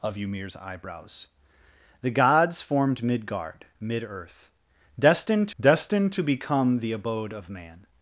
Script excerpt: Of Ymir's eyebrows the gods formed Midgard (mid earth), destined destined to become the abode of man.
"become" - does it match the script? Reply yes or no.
yes